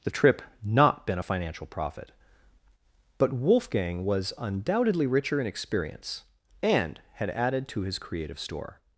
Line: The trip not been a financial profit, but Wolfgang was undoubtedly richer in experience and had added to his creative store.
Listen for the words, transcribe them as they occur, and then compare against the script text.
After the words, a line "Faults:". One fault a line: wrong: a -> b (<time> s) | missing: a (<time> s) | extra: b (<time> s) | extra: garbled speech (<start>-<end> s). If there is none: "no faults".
The trip not been a financial profit, but Wolfgang was undoubtedly richer in experience and had added to his creative store.
Faults:
no faults